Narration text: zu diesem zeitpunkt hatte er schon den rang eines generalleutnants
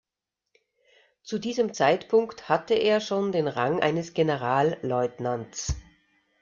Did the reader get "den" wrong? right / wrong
right